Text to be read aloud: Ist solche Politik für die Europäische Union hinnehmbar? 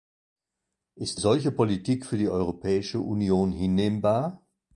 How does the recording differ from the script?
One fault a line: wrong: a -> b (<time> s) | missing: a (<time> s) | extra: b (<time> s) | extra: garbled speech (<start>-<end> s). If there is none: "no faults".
no faults